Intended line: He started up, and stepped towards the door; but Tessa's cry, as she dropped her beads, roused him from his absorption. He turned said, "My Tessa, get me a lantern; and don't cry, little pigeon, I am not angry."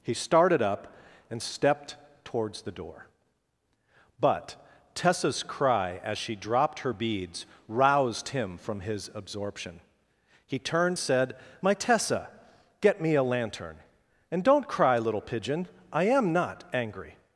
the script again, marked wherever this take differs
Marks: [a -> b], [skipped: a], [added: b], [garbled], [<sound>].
He started up, and stepped towards the door; but Tessa's cry, as she dropped her beads, roused him from his absorption. He turned said, "My Tessa, get me a lantern; and don't cry, little pigeon, I am not angry."